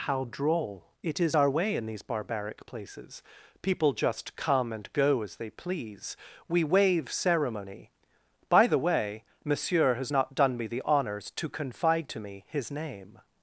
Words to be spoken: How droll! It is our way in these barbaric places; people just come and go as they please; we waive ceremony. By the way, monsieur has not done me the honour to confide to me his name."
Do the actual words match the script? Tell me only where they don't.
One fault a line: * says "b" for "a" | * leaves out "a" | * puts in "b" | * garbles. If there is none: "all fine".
* says "honours" for "honour"